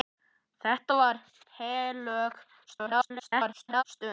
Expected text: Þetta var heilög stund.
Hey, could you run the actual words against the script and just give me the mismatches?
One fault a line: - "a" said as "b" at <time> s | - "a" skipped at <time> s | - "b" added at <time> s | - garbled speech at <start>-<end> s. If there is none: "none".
- garbled speech at 2.7-3.8 s